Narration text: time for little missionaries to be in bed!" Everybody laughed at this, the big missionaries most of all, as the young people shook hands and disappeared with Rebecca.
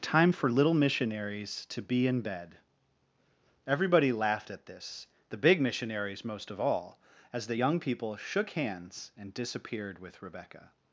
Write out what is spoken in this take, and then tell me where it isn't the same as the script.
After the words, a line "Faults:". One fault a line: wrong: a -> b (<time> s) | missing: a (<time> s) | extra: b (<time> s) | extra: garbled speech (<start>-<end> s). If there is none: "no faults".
time for little missionaries to be in bed!" Everybody laughed at this, the big missionaries most of all, as the young people shook hands and disappeared with Rebecca.
Faults:
no faults